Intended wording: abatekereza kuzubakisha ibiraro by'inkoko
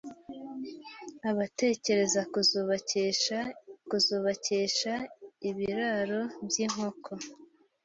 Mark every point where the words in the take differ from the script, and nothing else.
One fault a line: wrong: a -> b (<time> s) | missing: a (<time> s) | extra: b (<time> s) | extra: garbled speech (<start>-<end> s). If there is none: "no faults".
extra: kuzubakisha (3.9 s)